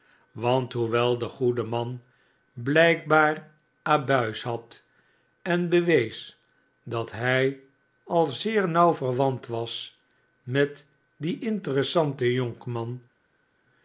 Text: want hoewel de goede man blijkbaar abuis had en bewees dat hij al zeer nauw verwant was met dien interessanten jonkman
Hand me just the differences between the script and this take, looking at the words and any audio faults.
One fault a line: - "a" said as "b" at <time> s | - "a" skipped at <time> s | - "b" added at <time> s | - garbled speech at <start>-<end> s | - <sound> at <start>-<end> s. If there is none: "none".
none